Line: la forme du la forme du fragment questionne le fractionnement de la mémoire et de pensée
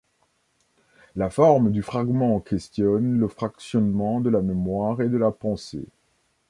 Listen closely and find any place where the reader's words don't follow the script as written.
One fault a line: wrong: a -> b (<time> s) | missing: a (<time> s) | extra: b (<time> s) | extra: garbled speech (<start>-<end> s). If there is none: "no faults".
missing: la forme du (1.8 s)
extra: la (5.2 s)